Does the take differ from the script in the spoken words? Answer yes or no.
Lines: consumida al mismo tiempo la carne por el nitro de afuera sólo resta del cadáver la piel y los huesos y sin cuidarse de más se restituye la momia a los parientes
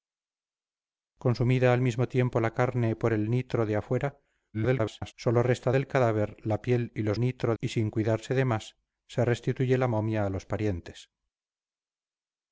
yes